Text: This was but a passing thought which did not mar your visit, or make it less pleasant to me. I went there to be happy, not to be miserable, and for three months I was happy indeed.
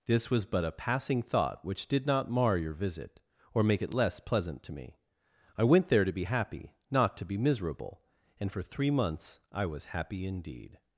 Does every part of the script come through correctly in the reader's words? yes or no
yes